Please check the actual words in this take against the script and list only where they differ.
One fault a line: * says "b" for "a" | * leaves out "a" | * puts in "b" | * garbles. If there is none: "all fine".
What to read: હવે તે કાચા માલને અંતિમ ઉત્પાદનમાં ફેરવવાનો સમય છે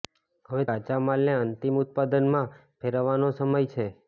* leaves out "તે"